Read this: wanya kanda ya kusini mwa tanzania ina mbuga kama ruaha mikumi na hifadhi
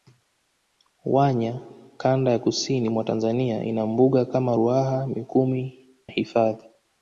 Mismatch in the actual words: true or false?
true